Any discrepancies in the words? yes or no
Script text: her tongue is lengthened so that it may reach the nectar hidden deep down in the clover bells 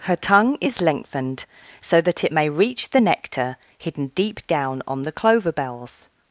yes